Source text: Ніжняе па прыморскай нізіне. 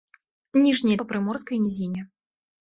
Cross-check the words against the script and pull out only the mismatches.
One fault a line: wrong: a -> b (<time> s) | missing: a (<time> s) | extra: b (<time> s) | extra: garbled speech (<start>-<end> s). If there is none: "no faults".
no faults